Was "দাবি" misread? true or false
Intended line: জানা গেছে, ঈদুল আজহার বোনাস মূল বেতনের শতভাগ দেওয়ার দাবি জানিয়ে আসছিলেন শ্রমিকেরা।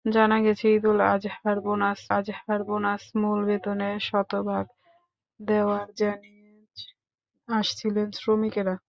true